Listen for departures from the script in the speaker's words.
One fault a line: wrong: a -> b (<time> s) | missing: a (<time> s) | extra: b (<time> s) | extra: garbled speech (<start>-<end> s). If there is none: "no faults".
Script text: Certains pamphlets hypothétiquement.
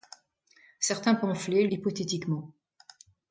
no faults